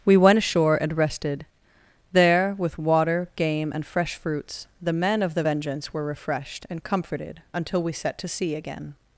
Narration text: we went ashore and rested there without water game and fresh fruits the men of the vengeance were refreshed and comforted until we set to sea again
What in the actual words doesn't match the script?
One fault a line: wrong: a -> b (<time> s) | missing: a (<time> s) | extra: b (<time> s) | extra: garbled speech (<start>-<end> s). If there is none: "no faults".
wrong: without -> with (2.6 s)